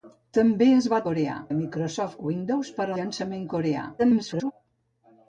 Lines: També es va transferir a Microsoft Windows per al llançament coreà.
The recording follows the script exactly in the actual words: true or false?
false